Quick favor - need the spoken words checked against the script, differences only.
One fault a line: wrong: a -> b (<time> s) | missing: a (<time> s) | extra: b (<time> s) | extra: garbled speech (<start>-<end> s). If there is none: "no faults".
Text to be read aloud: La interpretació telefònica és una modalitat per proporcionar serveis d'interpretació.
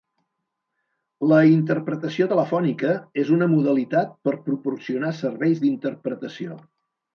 no faults